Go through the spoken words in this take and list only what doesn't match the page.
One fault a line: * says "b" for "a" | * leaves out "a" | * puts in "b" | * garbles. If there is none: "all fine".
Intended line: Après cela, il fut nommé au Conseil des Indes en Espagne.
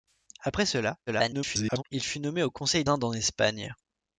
* garbles
* leaves out "des"